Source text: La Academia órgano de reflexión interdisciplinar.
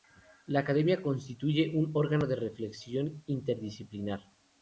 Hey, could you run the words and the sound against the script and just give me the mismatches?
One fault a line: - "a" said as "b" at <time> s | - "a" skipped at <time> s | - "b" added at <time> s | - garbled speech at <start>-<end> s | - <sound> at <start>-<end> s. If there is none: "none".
- "constituye un" added at 1.0 s